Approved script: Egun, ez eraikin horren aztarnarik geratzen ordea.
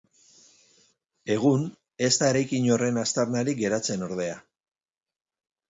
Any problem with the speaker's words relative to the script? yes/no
yes